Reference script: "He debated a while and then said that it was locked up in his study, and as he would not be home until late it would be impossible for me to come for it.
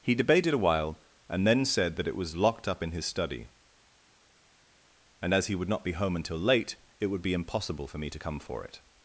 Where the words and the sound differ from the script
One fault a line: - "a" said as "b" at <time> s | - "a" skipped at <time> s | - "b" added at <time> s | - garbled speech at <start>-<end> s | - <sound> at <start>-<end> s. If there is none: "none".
none